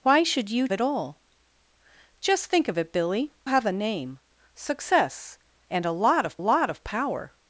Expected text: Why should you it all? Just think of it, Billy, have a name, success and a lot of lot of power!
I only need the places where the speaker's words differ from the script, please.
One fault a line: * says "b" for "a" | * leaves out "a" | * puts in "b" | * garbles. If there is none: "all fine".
all fine